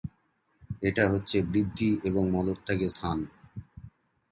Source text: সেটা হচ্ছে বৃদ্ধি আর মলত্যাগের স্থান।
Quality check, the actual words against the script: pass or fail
fail